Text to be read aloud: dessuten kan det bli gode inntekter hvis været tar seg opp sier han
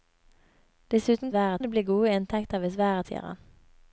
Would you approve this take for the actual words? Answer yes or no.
no